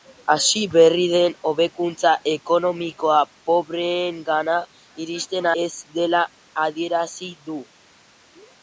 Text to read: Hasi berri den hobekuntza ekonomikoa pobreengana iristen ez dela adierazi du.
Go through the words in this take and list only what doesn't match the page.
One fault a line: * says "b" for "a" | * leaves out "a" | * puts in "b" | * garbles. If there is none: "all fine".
all fine